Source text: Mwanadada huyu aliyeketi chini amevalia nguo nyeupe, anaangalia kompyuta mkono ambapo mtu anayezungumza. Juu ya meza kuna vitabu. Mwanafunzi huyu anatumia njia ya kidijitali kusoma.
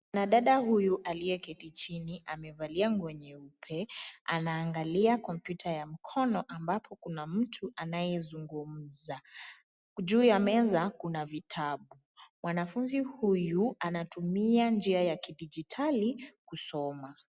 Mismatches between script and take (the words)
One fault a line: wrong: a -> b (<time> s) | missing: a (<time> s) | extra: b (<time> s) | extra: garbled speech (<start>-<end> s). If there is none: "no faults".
extra: ya (5.7 s)
extra: kuna (7.0 s)